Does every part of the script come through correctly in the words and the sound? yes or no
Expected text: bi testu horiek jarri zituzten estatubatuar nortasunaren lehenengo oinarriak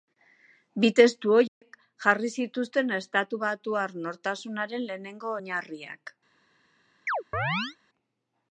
no